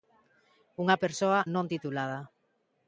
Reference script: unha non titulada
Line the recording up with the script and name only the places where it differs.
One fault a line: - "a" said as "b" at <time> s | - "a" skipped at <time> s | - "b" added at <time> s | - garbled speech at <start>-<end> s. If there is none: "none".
- "persoa" added at 1.0 s